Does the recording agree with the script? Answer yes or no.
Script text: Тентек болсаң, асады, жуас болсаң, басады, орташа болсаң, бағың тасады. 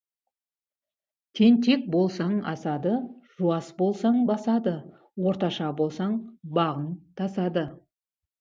yes